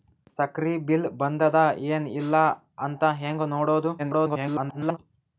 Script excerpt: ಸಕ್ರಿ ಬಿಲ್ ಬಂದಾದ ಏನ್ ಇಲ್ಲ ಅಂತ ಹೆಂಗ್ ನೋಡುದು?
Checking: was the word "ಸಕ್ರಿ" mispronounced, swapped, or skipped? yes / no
no